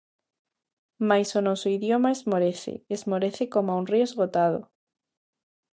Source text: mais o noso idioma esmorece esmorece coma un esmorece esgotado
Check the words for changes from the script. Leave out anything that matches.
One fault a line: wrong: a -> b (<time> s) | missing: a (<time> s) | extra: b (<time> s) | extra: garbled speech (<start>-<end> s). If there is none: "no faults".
wrong: esmorece -> río (3.9 s)